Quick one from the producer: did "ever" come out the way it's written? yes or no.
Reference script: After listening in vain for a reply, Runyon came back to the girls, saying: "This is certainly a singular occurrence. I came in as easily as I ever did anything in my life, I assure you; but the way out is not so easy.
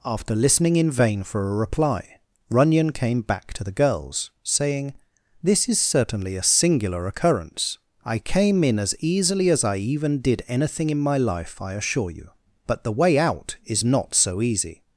no